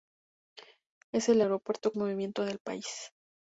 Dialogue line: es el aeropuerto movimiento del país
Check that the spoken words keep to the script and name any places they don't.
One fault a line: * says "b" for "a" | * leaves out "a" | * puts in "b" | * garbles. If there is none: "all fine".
all fine